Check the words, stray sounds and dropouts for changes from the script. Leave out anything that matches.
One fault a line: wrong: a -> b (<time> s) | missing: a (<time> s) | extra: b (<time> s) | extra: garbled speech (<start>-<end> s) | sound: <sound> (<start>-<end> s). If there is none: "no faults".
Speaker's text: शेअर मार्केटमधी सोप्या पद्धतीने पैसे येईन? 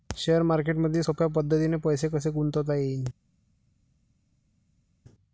extra: कसे गुंतवता (2.1 s)